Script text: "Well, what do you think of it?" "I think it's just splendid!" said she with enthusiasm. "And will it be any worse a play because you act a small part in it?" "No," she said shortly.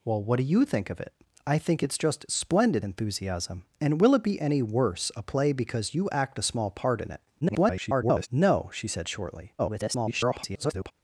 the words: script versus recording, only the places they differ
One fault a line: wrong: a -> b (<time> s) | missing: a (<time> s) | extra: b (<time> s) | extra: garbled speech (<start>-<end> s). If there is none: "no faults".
missing: said she with (2.9 s)
extra: garbled speech (7.4-8.3 s)
extra: garbled speech (9.6-10.9 s)